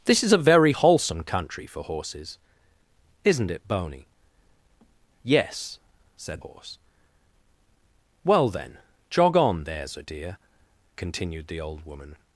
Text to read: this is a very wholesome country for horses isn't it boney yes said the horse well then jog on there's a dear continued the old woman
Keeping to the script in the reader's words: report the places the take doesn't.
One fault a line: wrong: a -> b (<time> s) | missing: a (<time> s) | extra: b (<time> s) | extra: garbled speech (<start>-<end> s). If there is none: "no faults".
missing: the (6.4 s)